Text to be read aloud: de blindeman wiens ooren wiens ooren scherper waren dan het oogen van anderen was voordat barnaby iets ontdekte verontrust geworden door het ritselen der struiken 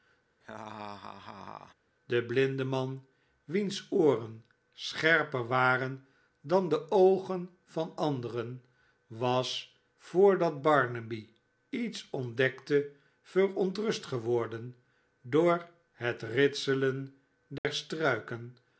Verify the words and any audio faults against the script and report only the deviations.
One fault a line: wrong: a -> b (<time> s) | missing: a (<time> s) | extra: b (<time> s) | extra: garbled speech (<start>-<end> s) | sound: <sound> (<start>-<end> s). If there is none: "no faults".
sound: laugh (0.4-1.7 s)
missing: wiens ooren (4.4 s)
wrong: het -> de (6.7 s)
sound: dropout (17.6-17.6 s)